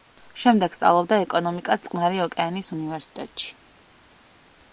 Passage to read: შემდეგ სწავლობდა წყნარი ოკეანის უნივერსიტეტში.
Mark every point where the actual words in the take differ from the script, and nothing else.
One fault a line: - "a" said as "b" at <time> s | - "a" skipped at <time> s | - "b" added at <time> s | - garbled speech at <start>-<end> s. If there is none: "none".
- "ეკონომიკას" added at 1.2 s